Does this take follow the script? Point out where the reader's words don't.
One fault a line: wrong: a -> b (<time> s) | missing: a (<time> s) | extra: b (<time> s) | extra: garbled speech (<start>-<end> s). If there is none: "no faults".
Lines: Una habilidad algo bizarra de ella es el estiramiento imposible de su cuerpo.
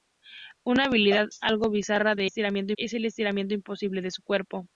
wrong: ella -> estiramiento (2.2 s)